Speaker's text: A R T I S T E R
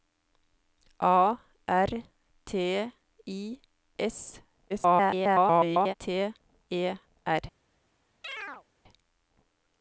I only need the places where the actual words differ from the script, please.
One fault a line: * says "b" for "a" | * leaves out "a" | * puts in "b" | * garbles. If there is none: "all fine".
* garbles